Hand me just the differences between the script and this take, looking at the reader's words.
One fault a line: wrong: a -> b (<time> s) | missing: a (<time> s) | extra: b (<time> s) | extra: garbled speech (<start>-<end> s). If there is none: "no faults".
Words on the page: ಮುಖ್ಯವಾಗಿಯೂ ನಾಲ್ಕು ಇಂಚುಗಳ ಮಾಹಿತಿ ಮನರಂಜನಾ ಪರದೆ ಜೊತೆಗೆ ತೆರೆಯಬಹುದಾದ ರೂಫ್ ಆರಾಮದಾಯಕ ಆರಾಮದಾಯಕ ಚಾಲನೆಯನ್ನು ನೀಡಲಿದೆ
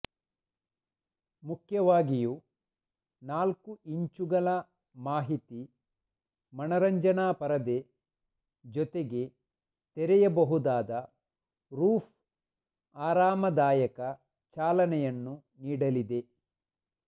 missing: ಆರಾಮದಾಯಕ (14.0 s)